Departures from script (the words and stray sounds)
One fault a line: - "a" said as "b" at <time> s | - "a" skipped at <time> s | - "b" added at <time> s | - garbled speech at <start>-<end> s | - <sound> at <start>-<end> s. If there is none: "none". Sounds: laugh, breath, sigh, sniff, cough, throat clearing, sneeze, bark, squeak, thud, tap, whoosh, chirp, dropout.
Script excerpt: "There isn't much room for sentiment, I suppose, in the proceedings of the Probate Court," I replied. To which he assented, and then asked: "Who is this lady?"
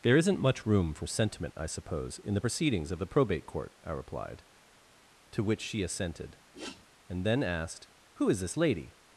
- "he" said as "she" at 5.6 s
- sniff at 6.5-6.9 s